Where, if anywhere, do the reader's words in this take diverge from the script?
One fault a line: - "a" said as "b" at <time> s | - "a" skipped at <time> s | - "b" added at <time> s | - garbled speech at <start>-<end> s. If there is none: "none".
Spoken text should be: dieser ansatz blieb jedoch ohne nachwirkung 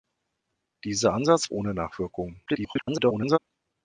- "blieb jedoch" skipped at 1.5 s
- garbled speech at 2.5-3.4 s